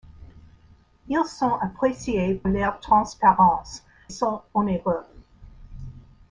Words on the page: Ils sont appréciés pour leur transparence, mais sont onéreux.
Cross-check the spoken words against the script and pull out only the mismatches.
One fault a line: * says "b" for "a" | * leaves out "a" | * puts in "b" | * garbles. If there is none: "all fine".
* leaves out "pour"
* leaves out "mais"